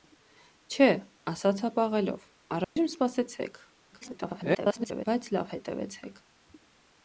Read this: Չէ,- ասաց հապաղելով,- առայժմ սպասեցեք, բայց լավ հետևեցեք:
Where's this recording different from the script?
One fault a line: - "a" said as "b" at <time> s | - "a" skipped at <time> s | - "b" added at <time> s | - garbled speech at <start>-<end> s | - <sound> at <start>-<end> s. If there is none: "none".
- dropout at 2.6-2.8 s
- garbled speech at 3.9-5.0 s